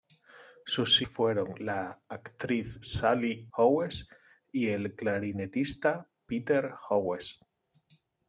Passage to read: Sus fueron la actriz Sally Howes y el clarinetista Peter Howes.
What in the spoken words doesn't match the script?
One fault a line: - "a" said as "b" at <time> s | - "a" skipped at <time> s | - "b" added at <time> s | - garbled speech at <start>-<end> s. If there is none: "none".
none